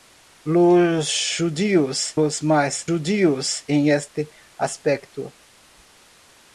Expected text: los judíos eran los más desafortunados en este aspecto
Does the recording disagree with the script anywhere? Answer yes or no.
yes